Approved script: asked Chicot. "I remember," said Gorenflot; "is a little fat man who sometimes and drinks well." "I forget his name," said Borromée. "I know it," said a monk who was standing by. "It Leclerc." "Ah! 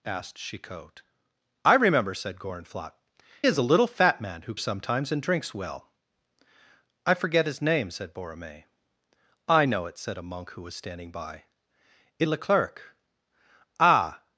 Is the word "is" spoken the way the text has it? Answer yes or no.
yes